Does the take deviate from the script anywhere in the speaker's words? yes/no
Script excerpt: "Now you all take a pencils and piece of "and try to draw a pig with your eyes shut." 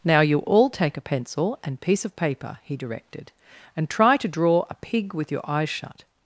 yes